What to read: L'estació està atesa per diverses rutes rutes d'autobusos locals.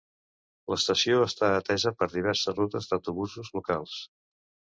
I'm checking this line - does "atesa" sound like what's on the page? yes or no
yes